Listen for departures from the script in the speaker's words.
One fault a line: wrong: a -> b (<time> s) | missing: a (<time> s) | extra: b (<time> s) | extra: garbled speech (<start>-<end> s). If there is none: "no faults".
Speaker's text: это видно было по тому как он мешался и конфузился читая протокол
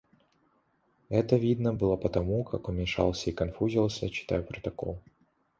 no faults